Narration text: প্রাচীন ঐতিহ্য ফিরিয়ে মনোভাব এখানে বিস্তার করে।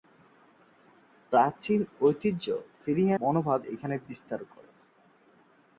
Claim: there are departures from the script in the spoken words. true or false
false